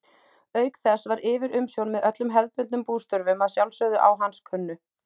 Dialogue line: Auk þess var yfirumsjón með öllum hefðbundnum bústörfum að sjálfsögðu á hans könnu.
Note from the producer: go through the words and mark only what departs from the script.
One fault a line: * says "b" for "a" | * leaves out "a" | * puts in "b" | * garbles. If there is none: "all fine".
all fine